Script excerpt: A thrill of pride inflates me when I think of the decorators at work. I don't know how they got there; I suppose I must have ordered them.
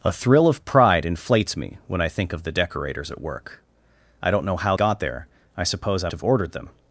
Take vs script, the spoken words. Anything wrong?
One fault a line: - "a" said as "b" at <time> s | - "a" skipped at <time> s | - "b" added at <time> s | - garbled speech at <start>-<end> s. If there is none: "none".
- "they" skipped at 4.8 s
- "must" skipped at 6.1 s